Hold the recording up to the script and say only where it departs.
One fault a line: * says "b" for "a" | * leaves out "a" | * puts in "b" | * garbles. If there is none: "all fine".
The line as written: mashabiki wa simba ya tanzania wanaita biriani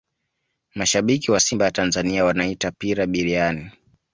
* puts in "pira"